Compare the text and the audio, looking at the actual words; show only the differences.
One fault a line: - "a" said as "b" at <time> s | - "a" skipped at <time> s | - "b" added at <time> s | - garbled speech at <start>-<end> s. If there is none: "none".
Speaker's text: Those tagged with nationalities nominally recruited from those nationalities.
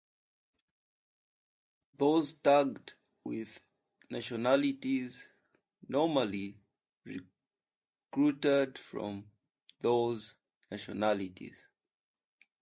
none